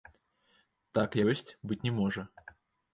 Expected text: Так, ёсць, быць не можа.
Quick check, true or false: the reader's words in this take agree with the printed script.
true